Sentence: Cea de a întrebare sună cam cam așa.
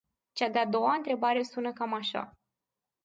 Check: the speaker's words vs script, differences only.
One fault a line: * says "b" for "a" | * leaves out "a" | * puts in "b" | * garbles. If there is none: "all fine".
* puts in "doua"
* leaves out "cam"